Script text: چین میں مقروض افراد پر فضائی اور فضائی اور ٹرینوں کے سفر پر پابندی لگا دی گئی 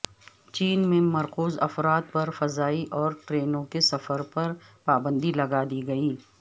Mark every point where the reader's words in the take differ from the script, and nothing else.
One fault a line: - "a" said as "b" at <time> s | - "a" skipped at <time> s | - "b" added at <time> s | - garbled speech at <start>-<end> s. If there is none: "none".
- "فضائی اور" skipped at 3.1 s